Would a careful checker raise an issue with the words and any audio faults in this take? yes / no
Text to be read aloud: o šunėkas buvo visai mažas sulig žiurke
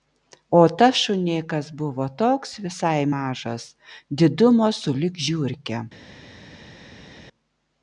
yes